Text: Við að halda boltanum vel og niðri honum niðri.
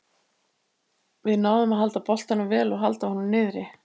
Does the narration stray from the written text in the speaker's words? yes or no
yes